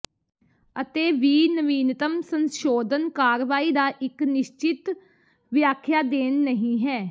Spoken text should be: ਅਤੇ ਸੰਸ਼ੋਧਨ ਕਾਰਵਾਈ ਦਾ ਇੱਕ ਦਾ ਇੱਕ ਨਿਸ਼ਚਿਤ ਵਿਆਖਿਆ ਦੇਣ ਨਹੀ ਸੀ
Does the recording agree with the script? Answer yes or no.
no